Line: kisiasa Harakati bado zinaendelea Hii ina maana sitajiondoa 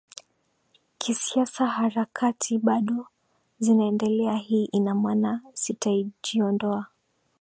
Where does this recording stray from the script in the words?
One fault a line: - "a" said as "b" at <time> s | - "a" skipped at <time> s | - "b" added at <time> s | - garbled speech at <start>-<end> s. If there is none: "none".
none